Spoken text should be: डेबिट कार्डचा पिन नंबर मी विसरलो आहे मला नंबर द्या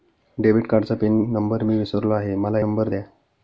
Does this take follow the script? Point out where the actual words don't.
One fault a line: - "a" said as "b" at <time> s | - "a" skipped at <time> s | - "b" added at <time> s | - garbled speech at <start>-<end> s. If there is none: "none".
none